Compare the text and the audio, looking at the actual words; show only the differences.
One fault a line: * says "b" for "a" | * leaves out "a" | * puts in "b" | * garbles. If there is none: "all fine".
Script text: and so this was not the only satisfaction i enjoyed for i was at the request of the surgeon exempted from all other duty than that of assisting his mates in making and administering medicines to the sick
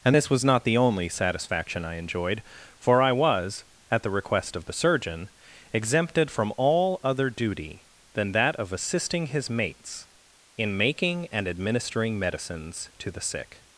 * leaves out "so"